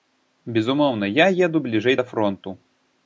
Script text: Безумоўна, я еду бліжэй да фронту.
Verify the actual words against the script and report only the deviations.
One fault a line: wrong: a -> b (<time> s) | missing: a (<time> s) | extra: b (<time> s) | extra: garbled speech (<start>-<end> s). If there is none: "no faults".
no faults